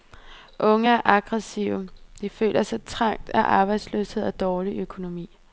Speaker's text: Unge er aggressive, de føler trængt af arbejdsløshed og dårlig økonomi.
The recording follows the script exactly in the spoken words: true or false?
false